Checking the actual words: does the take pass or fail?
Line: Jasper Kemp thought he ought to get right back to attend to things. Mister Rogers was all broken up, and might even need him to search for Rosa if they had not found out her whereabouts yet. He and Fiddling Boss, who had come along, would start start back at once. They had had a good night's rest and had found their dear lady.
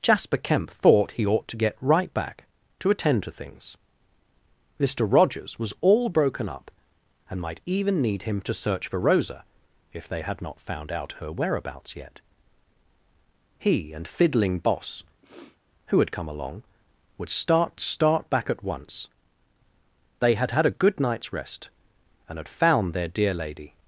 pass